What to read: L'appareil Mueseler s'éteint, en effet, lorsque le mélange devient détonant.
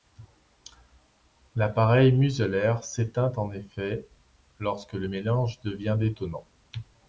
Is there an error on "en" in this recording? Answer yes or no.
no